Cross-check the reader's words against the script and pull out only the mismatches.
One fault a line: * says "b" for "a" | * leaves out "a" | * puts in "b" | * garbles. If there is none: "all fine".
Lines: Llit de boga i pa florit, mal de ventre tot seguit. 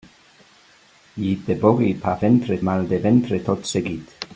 * says "ventre" for "florit"